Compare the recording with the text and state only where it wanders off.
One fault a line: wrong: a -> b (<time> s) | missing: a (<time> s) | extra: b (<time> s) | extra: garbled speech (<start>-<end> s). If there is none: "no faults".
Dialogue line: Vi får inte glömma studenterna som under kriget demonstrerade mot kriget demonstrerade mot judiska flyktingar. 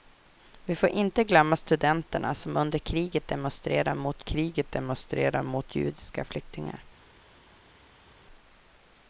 no faults